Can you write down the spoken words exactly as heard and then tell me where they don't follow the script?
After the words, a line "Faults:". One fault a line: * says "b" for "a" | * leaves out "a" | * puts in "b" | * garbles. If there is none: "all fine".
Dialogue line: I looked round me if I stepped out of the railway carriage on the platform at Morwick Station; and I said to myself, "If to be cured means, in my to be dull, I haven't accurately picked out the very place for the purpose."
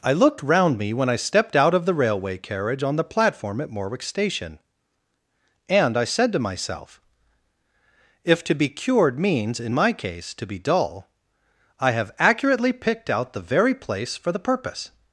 I looked round me when I stepped out of the railway carriage on the platform at Morwick Station; and I said to myself, "If to be cured means, in my case, to be dull, I have accurately picked out the very place for the purpose."
Faults:
* says "when" for "if"
* puts in "case"
* says "have" for "haven't"